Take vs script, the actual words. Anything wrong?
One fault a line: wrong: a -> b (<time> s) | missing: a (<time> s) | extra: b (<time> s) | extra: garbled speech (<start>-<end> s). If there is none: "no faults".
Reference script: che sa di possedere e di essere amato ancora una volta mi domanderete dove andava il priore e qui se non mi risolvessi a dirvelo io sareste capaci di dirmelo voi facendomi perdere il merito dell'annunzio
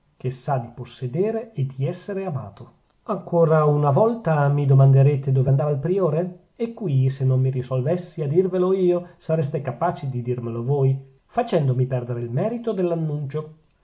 no faults